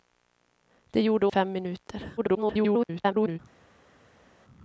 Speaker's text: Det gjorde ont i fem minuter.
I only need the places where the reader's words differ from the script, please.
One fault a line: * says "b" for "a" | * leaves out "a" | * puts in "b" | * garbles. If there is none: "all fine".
* leaves out "ont"
* garbles